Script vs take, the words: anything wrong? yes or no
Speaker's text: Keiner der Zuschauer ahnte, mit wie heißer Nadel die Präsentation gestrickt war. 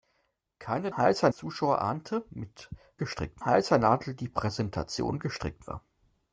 yes